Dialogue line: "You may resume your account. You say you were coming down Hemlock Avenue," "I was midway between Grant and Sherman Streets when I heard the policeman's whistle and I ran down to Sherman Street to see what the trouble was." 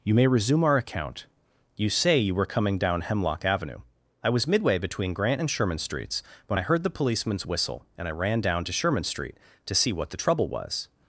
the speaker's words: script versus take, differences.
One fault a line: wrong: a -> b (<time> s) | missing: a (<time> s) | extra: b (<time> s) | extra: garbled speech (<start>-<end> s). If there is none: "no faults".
wrong: your -> our (0.6 s)